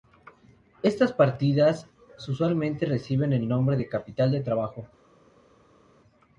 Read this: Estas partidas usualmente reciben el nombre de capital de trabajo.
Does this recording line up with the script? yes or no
yes